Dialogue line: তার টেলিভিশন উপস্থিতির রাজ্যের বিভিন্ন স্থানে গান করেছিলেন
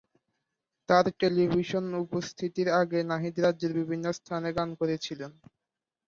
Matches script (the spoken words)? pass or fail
fail